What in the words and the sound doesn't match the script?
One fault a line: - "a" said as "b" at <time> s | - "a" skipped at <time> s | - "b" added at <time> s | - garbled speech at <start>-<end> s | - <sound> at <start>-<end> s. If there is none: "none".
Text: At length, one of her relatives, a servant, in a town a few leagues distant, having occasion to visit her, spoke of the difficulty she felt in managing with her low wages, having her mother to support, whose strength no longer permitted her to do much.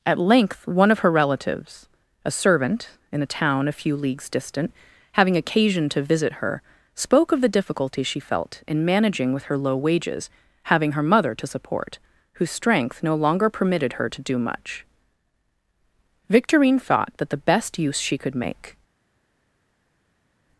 - "Victorine thought that the best use she could make" added at 16.3 s